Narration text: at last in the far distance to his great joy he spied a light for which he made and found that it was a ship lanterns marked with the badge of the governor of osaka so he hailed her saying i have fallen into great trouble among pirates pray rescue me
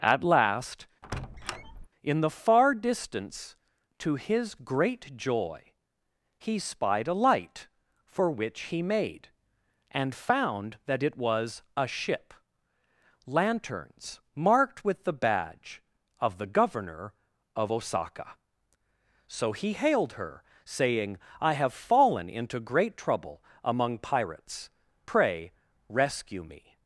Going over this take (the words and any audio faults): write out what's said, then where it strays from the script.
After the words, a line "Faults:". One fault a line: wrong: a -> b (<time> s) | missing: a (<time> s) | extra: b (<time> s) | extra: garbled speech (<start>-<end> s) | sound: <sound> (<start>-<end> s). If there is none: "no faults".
at last in the far distance to his great joy he spied a light for which he made and found that it was a ship lanterns marked with the badge of the governor of osaka so he hailed her saying i have fallen into great trouble among pirates pray rescue me
Faults:
sound: squeak (1.0-1.9 s)